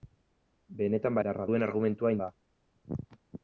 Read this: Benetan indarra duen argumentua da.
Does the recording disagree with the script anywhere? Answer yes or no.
no